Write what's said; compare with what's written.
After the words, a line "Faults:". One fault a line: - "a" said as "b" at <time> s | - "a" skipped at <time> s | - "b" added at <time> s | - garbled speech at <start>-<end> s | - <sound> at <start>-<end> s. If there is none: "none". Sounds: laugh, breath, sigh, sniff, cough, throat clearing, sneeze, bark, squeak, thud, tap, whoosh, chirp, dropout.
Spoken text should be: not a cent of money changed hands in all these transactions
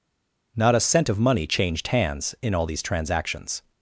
not a cent of money changed hands in all these transactions
Faults:
none